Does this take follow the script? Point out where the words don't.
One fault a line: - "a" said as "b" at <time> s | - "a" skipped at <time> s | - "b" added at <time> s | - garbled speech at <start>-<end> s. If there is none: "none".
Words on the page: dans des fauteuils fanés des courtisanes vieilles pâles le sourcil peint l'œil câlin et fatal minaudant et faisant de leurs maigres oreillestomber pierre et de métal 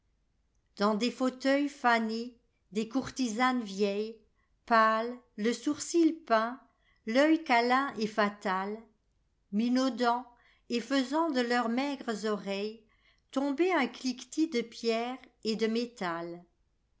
- "un cliquetis de" added at 13.7 s